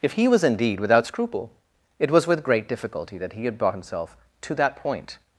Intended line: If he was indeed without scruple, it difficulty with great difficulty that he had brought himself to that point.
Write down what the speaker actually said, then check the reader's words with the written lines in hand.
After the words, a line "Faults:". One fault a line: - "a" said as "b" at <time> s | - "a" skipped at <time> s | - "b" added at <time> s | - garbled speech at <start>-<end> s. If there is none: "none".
If he was indeed without scruple, it was with great difficulty that he had brought himself to that point.
Faults:
- "difficulty" said as "was" at 2.1 s